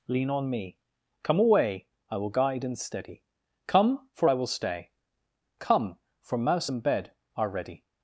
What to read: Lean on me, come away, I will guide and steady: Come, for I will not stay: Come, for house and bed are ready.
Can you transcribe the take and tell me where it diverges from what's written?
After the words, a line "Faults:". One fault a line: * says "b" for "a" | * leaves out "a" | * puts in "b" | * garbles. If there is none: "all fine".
Lean on me, come away, I will guide and steady: Come, for I will stay: Come, for mouse and bed are ready.
Faults:
* leaves out "not"
* says "mouse" for "house"